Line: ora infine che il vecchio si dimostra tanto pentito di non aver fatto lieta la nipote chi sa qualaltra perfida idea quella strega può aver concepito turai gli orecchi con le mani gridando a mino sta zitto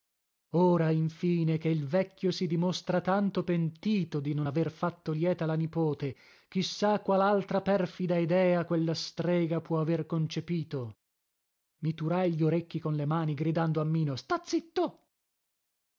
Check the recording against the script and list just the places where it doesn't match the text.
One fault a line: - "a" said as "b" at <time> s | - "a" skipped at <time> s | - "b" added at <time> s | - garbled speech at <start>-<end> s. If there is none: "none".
- "i" added at 11.8 s